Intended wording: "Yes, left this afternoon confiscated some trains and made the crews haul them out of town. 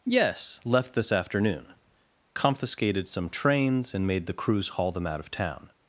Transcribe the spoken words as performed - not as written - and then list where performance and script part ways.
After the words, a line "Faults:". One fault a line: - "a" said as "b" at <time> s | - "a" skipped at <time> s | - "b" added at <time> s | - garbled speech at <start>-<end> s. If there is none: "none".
"Yes, left this afternoon confiscated some trains and made the crews haul them out of town.
Faults:
none